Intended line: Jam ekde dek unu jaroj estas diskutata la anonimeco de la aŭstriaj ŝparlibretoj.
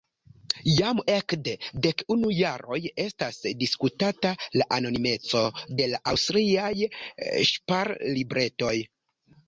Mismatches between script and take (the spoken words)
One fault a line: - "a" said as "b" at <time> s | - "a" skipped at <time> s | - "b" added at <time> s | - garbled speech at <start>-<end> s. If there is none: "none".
none